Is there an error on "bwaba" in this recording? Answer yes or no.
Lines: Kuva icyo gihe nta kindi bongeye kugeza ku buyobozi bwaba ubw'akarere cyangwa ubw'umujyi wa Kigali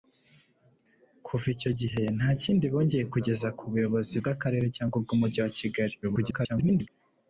yes